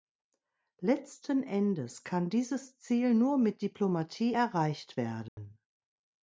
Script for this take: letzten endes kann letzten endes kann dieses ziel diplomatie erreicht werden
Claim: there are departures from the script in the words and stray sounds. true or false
true